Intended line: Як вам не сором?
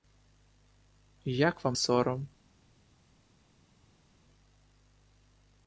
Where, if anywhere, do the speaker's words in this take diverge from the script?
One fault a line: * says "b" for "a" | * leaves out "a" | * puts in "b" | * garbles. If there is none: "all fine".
* leaves out "не"